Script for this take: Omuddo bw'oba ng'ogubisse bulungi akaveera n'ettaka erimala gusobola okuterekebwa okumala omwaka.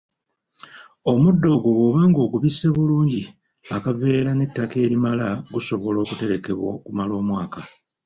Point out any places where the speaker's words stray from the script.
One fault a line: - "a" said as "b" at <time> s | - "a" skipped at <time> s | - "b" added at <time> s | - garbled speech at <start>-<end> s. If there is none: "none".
- "ogwo" added at 1.5 s